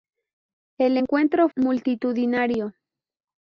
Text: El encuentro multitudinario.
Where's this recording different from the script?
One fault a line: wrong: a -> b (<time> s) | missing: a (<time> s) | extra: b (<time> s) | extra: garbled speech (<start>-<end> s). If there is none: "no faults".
no faults